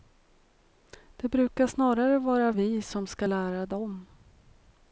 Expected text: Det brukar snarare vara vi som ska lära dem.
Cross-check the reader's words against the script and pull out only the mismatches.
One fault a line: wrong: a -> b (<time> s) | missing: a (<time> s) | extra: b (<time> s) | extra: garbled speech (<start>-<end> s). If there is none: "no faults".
no faults